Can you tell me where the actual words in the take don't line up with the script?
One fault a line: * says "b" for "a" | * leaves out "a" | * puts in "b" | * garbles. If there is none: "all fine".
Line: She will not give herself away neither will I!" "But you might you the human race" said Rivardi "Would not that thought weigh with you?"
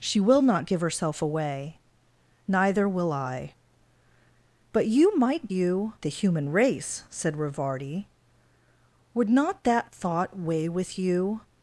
all fine